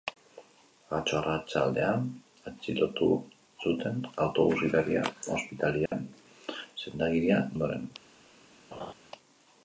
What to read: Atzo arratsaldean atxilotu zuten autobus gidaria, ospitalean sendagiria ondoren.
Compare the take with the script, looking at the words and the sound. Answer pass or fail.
fail